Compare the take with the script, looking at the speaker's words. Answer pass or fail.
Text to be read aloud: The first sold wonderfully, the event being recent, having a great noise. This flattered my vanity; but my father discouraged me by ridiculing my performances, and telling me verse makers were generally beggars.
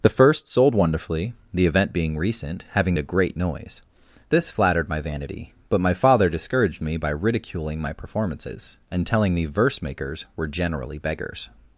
pass